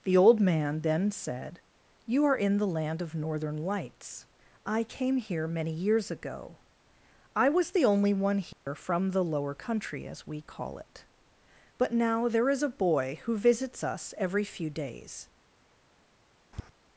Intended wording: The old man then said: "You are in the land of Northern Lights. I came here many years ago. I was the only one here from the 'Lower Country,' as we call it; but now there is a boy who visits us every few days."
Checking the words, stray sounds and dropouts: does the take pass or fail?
fail